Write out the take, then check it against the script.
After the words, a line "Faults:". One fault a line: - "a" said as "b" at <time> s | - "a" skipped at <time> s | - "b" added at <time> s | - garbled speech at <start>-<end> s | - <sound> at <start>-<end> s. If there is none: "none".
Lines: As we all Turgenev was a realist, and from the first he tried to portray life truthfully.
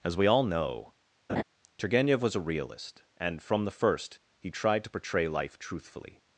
As we all know, Turgenev was a realist, and from the first he tried to portray life truthfully.
Faults:
- "know" added at 0.4 s
- laugh at 1.3-1.4 s